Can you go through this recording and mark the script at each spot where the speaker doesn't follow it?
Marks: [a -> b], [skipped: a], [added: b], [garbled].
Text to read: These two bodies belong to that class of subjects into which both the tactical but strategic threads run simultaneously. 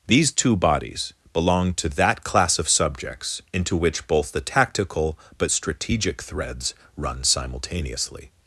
These two bodies belong to that class of subjects into which both the tactical but strategic threads run simultaneously.